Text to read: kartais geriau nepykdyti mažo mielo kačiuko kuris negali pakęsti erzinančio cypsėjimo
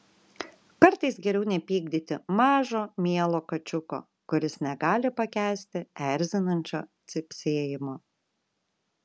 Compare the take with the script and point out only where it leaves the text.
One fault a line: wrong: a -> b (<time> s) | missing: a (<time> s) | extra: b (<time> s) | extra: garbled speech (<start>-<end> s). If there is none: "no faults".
no faults